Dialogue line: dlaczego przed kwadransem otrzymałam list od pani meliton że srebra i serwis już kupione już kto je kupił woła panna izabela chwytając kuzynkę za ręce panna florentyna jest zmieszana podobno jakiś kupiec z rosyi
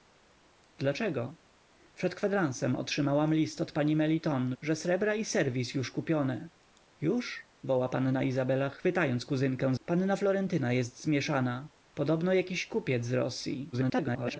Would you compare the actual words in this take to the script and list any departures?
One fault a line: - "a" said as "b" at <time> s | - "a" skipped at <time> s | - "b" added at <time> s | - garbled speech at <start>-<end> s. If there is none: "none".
- "kto je kupił" skipped at 7.5 s
- "za ręce" skipped at 9.7 s
- garbled speech at 13.7-14.4 s